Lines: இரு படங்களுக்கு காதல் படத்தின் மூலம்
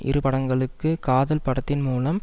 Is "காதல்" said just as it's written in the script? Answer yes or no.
yes